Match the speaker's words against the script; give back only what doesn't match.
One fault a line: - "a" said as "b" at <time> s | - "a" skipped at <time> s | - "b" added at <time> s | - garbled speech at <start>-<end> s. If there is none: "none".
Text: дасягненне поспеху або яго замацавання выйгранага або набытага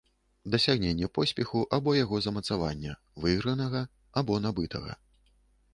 none